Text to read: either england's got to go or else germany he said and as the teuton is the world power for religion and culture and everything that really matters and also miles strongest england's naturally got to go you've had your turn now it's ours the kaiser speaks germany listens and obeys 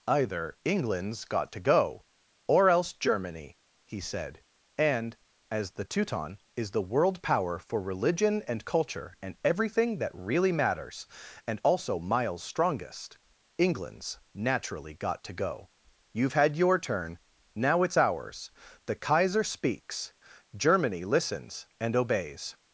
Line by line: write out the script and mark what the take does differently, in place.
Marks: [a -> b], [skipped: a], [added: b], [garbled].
either england's got to go or else germany he said and as the teuton is the world power for religion and culture and everything that really matters and also miles strongest england's naturally got to go you've had your turn now it's ours the kaiser speaks germany listens and obeys